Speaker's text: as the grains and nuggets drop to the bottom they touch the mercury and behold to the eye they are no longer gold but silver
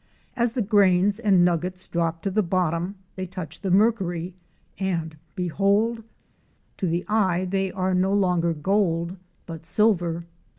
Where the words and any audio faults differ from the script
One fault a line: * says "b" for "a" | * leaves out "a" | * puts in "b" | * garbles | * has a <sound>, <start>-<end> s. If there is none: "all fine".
all fine